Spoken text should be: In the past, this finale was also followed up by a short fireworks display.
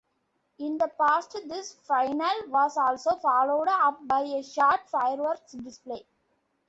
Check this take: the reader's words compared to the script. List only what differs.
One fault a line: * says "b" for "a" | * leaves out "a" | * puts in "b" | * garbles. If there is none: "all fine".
all fine